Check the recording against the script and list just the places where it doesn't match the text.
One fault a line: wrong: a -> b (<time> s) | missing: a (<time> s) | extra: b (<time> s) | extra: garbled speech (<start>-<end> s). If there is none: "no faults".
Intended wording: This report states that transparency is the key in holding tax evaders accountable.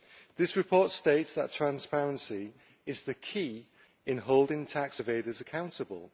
no faults